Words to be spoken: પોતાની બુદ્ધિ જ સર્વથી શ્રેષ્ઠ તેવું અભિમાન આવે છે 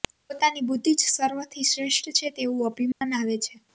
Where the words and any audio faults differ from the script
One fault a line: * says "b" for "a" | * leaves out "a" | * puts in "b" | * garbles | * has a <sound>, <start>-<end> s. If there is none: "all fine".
* puts in "છે"
* has a dropout, 2.9-3.0 s